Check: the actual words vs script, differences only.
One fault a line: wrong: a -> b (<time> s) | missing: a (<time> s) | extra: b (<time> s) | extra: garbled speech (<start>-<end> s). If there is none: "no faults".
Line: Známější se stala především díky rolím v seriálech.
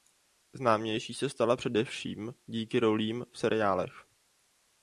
no faults